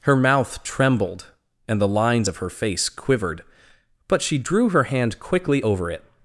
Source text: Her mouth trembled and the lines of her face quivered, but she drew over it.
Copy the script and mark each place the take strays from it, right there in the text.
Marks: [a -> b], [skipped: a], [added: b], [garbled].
Her mouth trembled and the lines of her face quivered, but she drew [added: her hand quickly] over it.